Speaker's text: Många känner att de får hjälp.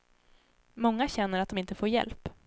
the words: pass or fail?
fail